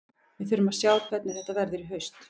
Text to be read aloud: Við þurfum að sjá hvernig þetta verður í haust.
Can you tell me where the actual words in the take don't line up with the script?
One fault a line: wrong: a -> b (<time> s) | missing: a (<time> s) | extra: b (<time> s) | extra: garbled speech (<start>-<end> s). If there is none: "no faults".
no faults